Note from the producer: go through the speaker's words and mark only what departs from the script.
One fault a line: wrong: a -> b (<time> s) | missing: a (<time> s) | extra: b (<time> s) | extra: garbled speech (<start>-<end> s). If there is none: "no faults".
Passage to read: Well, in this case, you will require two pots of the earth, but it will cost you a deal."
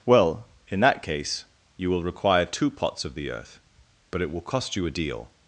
wrong: this -> that (0.8 s)